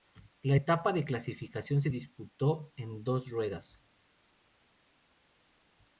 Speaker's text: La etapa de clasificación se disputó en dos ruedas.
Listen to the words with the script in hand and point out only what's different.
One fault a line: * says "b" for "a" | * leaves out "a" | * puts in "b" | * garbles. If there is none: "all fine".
all fine